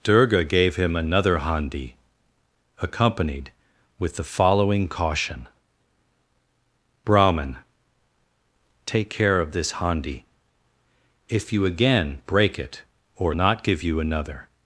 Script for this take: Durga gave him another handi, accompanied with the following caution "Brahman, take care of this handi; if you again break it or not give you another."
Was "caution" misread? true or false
false